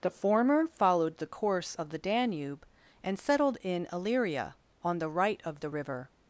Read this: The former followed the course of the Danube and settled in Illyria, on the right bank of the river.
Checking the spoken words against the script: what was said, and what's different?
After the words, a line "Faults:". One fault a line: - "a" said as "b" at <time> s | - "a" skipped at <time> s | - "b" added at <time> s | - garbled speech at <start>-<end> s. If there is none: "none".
The former followed the course of the Danube and settled in Illyria, on the right of the river.
Faults:
- "bank" skipped at 5.4 s